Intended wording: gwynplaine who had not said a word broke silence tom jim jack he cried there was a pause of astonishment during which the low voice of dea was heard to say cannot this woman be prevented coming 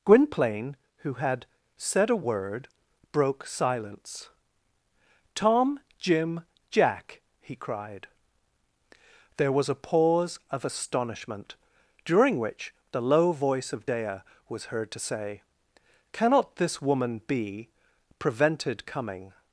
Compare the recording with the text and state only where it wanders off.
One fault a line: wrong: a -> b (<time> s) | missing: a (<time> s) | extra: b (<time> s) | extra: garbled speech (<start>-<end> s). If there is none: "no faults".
missing: not (1.4 s)